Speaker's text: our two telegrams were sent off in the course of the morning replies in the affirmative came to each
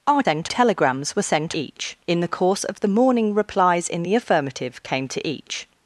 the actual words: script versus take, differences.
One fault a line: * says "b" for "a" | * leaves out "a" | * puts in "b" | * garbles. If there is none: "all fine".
* says "sent" for "two"
* says "each" for "off"